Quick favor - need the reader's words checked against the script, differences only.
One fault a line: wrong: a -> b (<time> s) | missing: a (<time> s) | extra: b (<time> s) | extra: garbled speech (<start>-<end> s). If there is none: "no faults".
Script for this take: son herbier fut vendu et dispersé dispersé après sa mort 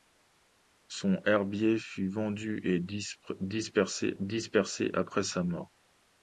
no faults